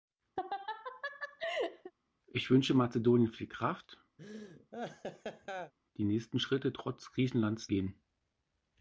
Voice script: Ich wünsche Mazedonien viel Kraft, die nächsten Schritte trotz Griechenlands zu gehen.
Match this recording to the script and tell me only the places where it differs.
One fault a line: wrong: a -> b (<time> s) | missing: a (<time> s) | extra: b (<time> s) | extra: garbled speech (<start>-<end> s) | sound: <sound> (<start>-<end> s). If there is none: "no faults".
sound: laugh (0.4-1.9 s)
sound: laugh (4.2-5.7 s)
missing: zu (7.7 s)